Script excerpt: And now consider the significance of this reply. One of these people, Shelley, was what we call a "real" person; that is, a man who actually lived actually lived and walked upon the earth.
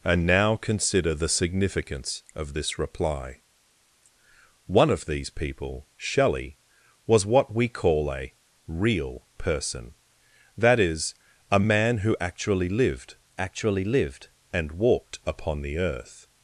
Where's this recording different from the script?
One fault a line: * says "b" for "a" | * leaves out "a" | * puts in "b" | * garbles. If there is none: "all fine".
all fine